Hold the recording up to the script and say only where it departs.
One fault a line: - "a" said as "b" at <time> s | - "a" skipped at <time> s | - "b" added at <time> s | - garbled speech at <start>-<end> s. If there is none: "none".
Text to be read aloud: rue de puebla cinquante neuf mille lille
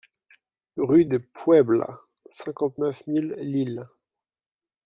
none